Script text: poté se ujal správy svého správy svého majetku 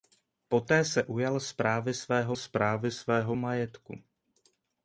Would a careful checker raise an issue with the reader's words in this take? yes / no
no